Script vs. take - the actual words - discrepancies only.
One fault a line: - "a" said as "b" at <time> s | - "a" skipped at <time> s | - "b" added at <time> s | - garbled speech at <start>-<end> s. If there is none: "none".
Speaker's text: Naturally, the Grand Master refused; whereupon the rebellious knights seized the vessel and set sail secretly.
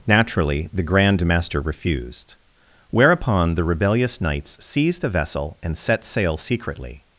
none